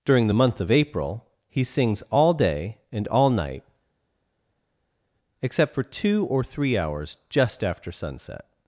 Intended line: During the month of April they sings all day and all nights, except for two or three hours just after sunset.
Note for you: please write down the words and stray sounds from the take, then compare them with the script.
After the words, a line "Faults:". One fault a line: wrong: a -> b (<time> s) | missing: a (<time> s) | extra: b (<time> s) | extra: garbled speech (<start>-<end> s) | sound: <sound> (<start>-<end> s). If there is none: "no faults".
During the month of April he sings all day and all night, except for two or three hours just after sunset.
Faults:
wrong: they -> he (1.5 s)
wrong: nights -> night (3.3 s)